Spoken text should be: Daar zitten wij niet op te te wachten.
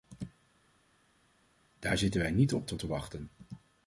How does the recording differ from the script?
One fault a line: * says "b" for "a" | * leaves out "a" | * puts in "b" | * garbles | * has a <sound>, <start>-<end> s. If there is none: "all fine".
all fine